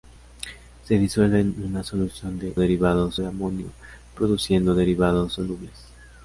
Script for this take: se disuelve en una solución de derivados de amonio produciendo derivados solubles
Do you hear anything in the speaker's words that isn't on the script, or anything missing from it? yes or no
no